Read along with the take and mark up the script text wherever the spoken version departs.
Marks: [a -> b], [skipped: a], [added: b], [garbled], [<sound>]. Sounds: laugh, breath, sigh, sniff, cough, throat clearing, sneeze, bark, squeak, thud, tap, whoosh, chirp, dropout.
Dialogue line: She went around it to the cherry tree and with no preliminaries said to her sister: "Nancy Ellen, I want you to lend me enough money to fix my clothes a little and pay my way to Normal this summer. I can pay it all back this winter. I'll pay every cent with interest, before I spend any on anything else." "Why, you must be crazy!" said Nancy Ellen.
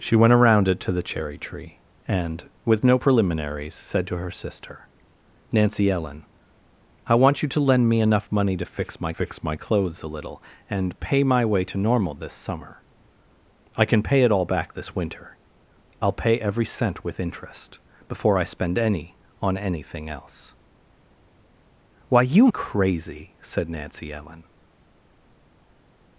She went around it to the cherry tree and with no preliminaries said to her sister: "Nancy Ellen, I want you to lend me enough money to fix my [added: fix my] clothes a little and pay my way to Normal this summer. I can pay it all back this winter. I'll pay every cent with interest, before I spend any on anything else." "Why, you [skipped: must be] crazy!" said Nancy Ellen.